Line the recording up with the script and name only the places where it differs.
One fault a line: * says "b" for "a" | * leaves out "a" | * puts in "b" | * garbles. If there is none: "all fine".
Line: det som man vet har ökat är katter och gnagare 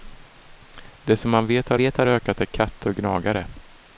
* puts in "vet har"